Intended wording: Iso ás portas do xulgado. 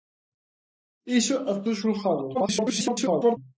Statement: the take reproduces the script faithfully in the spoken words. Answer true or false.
false